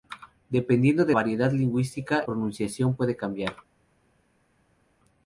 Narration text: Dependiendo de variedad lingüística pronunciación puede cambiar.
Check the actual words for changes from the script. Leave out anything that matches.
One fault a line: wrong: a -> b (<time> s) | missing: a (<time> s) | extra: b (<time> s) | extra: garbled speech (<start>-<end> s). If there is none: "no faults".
no faults